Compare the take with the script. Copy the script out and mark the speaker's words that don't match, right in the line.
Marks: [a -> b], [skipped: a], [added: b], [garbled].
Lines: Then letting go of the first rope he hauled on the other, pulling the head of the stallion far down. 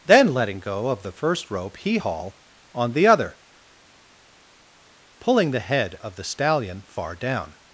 Then letting go of the first rope he [hauled -> haul] on the other, pulling the head of the stallion far down.